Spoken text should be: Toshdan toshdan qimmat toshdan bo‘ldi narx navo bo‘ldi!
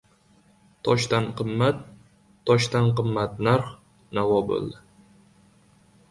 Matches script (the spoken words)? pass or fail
fail